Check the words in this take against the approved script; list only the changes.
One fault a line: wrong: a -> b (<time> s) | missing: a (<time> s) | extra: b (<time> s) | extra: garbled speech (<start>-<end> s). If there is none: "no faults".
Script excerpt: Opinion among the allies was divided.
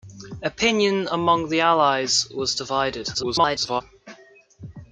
extra: garbled speech (3.1-3.8 s)